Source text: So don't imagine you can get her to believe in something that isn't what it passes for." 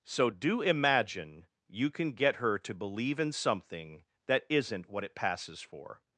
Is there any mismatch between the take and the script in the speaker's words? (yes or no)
yes